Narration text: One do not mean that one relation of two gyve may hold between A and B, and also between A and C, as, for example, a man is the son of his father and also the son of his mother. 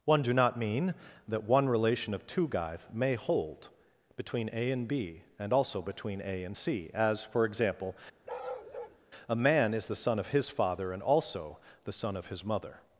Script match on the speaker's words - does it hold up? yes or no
yes